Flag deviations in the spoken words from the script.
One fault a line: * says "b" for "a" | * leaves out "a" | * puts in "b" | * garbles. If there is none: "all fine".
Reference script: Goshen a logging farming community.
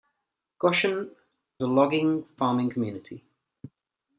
all fine